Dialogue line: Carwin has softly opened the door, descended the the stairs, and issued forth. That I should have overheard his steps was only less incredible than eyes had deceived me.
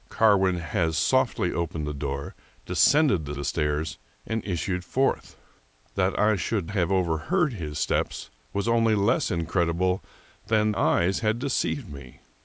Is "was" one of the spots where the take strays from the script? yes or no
no